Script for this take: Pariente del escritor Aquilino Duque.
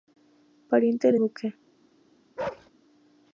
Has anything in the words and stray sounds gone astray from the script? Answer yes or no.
yes